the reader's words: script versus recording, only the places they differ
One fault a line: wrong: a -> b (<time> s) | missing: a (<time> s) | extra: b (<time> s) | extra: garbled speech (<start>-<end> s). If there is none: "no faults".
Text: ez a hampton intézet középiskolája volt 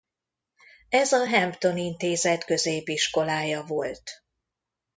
no faults